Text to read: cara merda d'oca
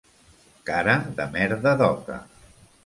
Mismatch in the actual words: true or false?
true